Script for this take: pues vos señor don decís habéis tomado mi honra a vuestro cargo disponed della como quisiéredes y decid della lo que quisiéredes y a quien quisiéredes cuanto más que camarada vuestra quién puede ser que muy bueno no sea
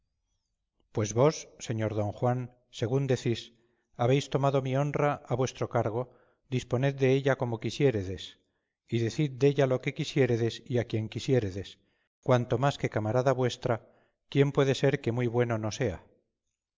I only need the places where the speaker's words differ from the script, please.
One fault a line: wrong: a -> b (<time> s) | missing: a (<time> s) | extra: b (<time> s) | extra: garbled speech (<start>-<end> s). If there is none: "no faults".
extra: juan según (2.2 s)